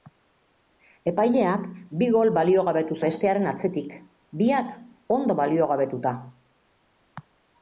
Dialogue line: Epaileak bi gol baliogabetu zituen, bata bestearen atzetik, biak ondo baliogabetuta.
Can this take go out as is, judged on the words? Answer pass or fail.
fail